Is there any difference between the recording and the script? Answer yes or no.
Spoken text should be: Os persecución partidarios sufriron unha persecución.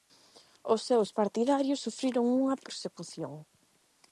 yes